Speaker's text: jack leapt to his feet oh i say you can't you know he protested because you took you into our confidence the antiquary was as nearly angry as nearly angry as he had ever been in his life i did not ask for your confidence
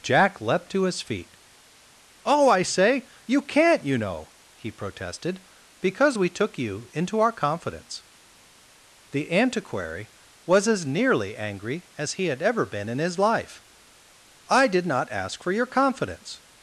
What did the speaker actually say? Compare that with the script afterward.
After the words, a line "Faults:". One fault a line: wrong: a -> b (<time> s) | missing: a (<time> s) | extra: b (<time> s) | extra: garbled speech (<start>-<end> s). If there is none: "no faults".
jack leapt to his feet oh i say you can't you know he protested because we took you into our confidence the antiquary was as nearly angry as he had ever been in his life i did not ask for your confidence
Faults:
wrong: you -> we (6.2 s)
missing: nearly angry as (12.1 s)